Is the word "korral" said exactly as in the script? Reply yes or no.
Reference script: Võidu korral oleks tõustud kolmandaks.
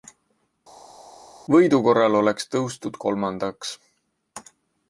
yes